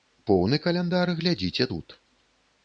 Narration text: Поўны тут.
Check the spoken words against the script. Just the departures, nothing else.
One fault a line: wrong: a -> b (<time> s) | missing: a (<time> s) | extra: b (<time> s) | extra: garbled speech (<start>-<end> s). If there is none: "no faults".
extra: каляндар глядзіце (0.6 s)